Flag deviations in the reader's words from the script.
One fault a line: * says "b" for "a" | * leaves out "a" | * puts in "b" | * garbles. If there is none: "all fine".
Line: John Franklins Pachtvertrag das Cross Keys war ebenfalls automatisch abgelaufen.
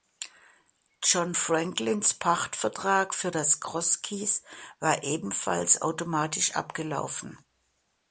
* puts in "für"